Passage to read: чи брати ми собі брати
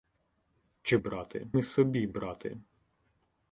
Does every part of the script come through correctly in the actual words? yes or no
yes